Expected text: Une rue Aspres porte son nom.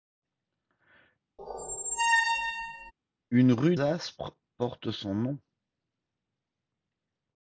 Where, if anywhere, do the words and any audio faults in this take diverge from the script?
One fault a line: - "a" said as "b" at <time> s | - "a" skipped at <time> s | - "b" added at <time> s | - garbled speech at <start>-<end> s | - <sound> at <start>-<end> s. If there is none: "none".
- squeak at 1.4-2.9 s